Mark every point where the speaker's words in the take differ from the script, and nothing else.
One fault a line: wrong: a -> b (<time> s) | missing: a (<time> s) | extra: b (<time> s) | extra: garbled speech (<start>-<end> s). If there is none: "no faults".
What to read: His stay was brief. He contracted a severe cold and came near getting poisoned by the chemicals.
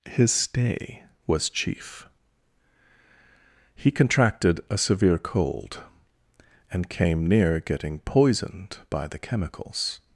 wrong: brief -> chief (1.5 s)